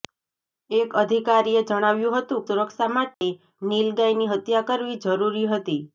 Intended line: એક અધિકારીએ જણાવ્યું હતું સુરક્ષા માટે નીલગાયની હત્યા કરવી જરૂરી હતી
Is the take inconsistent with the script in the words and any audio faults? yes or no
yes